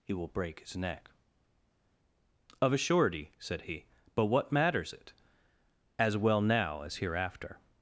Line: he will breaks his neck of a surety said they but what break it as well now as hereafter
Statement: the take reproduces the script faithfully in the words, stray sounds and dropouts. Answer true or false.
false